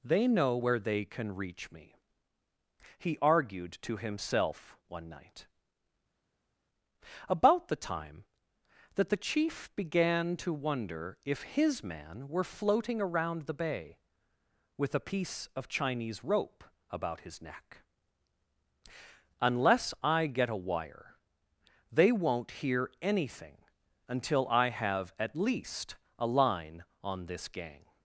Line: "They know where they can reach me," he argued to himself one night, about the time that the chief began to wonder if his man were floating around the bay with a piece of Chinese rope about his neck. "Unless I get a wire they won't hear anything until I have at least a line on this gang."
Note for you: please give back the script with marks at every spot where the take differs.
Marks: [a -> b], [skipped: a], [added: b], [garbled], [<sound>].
"They know where they can reach me," he argued to himself one night, about the time that the chief began to wonder if his man were floating around the bay with a piece of Chinese rope about his neck. "Unless I get a wire they won't hear anything until I have at least a line on this gang."